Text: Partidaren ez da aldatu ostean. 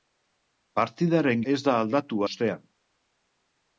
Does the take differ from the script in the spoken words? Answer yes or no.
no